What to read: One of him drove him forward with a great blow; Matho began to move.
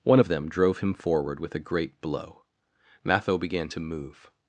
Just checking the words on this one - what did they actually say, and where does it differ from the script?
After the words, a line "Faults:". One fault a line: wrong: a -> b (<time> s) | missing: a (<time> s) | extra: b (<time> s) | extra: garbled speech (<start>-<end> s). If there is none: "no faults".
One of them drove him forward with a great blow; Matho began to move.
Faults:
wrong: him -> them (0.3 s)